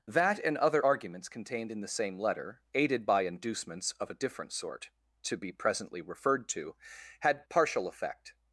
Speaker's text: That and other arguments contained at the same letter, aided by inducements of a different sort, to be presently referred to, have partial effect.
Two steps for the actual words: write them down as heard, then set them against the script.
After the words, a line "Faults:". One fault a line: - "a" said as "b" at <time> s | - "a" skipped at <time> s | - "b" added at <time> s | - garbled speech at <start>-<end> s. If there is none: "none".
That and other arguments contained in the same letter, aided by inducements of a different sort, to be presently referred to, had partial effect.
Faults:
- "at" said as "in" at 1.7 s
- "have" said as "had" at 7.2 s